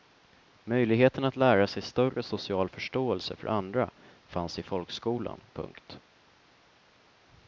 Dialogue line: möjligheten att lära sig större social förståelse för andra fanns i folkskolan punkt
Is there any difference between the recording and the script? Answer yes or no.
no